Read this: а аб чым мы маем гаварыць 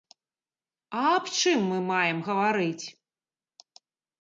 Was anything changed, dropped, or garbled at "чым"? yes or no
no